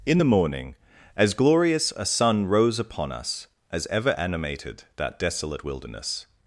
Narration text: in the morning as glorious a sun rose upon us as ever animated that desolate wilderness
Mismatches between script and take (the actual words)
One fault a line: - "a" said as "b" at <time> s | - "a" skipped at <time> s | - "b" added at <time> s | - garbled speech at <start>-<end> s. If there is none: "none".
none